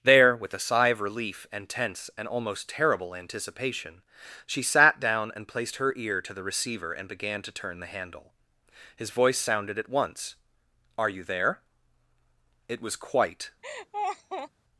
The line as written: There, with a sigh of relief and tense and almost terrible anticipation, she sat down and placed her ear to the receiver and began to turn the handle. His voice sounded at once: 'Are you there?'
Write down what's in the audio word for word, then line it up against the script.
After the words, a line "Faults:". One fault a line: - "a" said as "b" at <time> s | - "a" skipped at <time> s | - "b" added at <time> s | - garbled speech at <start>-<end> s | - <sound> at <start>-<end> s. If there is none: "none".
There, with a sigh of relief and tense and almost terrible anticipation, she sat down and placed her ear to the receiver and began to turn the handle. His voice sounded at once: 'Are you there?' It was quite
Faults:
- "It was quite" added at 12.7 s
- laugh at 13.6-14.5 s